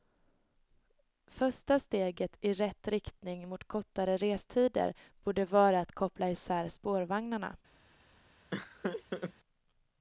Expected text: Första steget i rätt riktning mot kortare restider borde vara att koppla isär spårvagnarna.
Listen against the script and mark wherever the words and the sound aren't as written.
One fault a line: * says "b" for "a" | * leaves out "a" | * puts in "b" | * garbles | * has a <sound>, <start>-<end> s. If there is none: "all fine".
* has a laugh, 8.5-9.3 s